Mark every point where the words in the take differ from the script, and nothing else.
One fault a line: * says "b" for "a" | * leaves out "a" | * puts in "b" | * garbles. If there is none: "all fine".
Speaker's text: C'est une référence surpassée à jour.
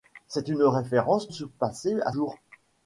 all fine